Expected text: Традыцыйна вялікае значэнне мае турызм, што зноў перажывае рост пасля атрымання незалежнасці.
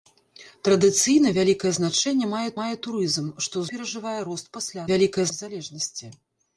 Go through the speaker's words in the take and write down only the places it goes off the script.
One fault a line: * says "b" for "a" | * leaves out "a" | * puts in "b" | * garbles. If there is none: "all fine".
* puts in "мае"
* leaves out "зноў"
* says "вялікае" for "атрымання"